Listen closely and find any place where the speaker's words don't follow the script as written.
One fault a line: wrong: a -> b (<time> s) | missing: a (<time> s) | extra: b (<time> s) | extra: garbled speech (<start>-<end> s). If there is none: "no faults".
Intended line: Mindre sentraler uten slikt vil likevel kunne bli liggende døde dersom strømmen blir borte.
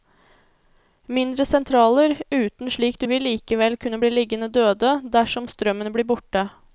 no faults